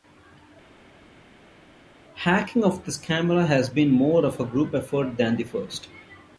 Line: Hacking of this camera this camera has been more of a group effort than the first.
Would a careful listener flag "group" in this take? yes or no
no